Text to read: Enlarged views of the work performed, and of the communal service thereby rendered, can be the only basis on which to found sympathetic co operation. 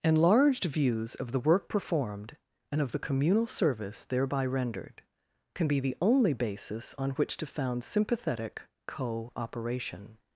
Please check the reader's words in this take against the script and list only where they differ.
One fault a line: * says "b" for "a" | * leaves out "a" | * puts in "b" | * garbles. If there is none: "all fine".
all fine